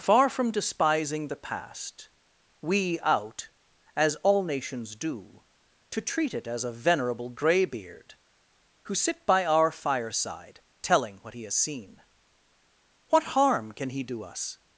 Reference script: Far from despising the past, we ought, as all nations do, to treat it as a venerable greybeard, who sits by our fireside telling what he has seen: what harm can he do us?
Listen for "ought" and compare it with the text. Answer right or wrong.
wrong